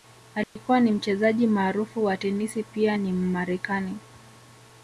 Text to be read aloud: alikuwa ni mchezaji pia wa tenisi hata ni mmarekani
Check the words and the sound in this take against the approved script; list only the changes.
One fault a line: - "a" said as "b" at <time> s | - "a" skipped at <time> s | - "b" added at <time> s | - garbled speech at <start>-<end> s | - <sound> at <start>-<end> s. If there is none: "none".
- dropout at 0.4-0.6 s
- "pia" said as "maarufu" at 1.5 s
- "hata" said as "pia" at 2.6 s